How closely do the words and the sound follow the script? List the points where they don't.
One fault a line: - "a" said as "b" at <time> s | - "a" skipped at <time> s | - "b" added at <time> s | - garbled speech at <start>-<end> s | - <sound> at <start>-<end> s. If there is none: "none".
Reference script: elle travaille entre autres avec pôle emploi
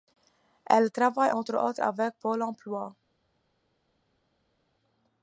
none